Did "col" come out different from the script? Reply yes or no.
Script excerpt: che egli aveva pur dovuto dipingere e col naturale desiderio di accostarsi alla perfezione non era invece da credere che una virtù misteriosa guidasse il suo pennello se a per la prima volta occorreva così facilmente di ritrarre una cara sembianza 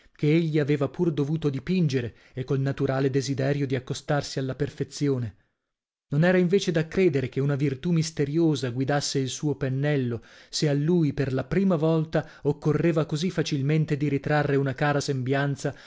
no